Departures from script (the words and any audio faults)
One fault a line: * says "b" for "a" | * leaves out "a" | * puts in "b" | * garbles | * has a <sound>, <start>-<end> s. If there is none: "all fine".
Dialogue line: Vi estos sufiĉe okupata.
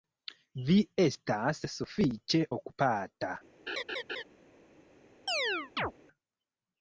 * says "estas" for "estos"
* has a laugh, 3.7-4.2 s
* has a chirp, 5.3-5.9 s